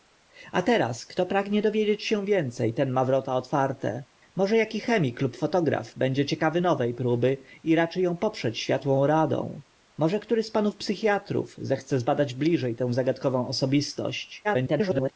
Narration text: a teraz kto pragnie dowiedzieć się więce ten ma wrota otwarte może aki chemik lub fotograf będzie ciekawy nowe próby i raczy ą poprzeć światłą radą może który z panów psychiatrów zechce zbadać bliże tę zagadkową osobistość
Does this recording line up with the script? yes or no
no